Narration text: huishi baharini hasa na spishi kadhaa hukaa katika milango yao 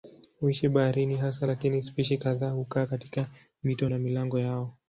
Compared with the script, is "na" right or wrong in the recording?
wrong